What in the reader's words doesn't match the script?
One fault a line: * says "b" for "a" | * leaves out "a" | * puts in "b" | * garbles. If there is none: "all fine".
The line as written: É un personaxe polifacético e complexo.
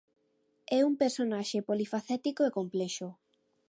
all fine